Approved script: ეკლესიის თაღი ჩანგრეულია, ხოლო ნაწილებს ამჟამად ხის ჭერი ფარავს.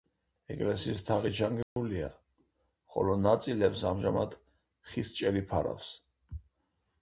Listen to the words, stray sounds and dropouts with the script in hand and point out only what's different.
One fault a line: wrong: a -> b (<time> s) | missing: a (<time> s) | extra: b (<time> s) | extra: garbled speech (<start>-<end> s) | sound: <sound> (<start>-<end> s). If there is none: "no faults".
sound: dropout (1.6-1.8 s)